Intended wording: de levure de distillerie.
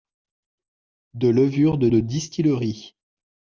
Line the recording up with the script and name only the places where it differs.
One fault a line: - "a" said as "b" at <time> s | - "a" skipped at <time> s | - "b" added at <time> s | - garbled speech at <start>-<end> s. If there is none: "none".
- "de" added at 1.9 s